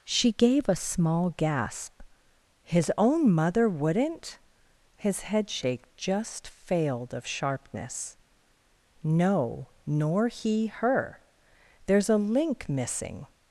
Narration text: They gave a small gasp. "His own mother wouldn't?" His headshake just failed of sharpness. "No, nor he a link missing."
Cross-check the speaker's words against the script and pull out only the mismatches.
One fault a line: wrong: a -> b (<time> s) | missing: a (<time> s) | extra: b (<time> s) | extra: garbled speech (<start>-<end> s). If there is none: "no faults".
wrong: They -> She (0.0 s)
extra: her There's (10.7 s)